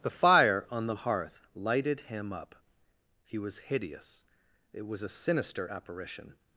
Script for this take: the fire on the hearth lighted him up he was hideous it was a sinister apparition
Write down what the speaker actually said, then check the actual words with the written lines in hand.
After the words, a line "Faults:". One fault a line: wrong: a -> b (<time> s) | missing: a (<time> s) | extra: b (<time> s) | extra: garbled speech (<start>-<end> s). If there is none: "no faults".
the fire on the hearth lighted him up he was hideous it was a sinister apparition
Faults:
no faults